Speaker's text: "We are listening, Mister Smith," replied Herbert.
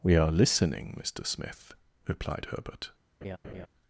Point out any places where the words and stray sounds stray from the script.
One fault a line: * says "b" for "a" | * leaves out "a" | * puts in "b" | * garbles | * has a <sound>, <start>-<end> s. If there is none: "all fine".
* has a laugh, 3.2-3.7 s